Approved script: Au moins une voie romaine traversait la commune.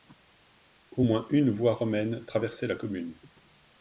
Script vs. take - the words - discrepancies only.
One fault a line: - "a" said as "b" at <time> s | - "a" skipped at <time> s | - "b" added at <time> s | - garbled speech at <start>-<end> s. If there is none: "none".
none